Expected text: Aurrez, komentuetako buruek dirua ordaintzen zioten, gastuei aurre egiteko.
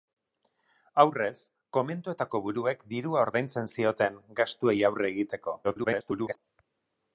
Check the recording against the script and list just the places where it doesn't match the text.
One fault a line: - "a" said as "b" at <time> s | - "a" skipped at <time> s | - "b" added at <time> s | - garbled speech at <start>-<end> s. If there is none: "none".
- garbled speech at 5.6-6.4 s